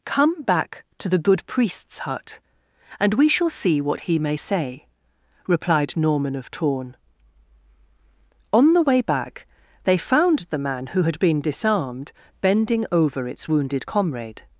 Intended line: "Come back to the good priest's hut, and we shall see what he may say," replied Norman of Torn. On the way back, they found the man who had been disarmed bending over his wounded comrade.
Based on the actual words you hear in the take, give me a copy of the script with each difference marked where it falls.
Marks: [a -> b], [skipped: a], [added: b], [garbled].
"Come back to the good priest's hut, and we shall see what he may say," replied Norman of Torn. On the way back, they found the man who had been disarmed bending over [his -> its] wounded comrade.